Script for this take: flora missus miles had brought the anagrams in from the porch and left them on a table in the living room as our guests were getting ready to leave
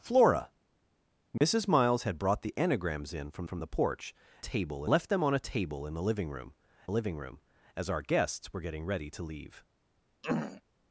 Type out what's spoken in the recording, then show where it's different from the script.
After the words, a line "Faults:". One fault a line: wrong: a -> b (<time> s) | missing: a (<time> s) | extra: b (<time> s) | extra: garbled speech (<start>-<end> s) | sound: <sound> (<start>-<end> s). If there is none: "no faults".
flora missus miles had brought the anagrams in from from the porch table left them on a table in the living room living room as our guests were getting ready to leave
Faults:
sound: dropout (1.4-1.4 s)
extra: from (3.4 s)
wrong: and -> table (4.4 s)
extra: living room (6.9 s)
sound: throat clearing (10.2-10.6 s)